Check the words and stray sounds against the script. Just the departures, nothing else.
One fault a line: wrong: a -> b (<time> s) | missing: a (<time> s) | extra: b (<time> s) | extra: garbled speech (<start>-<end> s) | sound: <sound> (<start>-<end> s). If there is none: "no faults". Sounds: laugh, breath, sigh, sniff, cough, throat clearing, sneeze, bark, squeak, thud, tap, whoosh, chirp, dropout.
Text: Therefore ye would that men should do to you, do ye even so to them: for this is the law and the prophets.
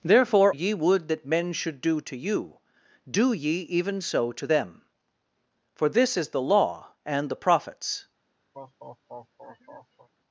sound: laugh (8.5-10.1 s)